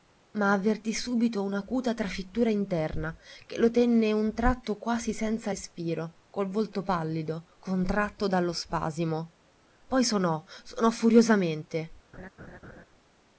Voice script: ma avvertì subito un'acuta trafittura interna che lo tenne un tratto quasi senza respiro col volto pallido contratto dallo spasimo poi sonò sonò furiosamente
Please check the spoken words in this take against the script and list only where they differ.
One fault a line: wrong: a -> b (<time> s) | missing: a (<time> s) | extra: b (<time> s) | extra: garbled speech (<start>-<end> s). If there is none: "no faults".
no faults